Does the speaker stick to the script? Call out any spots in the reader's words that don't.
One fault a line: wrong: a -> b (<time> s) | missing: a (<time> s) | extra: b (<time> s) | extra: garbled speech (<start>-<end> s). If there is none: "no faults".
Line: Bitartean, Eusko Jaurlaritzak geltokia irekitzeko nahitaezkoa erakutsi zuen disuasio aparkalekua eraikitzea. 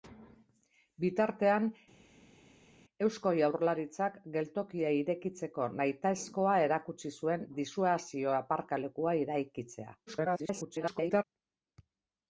extra: garbled speech (10.1-11.2 s)